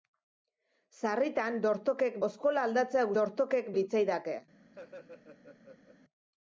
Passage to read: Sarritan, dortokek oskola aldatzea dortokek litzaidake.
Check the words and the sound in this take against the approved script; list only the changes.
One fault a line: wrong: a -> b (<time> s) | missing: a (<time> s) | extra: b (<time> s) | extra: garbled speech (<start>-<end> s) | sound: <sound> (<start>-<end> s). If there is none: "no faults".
sound: laugh (4.7-6.0 s)